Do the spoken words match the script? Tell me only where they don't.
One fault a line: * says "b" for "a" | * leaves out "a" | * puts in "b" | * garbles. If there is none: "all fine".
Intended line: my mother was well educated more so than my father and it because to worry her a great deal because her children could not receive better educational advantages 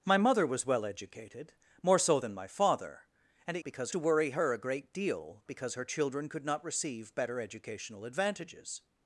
all fine